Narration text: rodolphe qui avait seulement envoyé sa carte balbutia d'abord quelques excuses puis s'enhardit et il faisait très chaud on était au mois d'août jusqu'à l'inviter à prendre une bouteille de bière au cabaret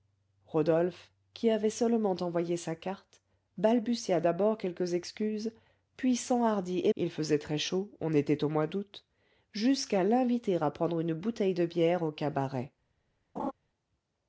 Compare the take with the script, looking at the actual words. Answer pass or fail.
pass